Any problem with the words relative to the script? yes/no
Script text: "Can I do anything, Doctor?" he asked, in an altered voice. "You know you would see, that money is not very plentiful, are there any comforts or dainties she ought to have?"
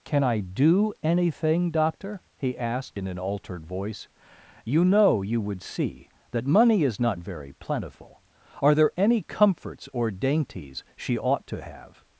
no